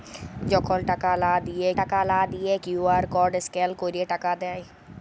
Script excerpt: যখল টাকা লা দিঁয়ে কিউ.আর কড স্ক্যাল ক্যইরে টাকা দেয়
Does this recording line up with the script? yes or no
no